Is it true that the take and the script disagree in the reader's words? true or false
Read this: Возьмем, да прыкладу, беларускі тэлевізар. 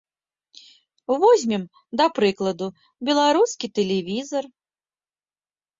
false